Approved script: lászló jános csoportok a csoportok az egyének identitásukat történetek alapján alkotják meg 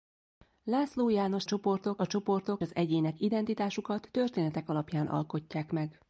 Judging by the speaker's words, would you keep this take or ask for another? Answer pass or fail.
pass